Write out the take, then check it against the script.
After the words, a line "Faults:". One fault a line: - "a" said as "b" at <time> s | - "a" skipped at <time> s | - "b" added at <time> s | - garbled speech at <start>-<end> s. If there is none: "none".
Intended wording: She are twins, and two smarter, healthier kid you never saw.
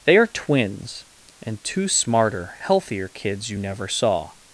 They are twins, and two smarter, healthier kids you never saw.
Faults:
- "She" said as "They" at 0.1 s
- "kid" said as "kids" at 3.1 s